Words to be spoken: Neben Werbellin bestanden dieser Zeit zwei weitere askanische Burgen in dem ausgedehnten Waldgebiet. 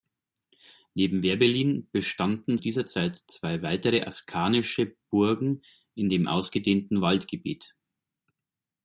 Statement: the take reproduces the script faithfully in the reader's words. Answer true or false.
true